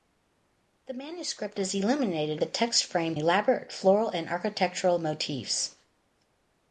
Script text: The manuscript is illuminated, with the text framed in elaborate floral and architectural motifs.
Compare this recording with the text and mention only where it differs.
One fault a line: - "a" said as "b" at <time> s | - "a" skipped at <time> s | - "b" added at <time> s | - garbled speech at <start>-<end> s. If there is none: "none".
- "with" skipped at 2.4 s
- "in" skipped at 3.2 s